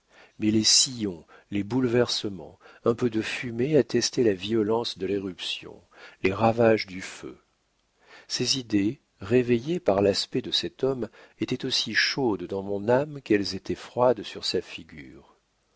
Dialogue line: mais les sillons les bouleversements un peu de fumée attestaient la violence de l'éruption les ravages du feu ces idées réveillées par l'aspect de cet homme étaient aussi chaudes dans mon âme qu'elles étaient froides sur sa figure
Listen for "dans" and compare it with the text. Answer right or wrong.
right